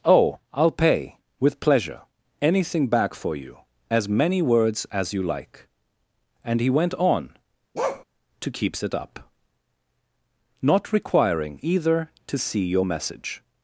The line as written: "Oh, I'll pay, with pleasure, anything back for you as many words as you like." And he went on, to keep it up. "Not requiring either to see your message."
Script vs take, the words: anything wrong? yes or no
yes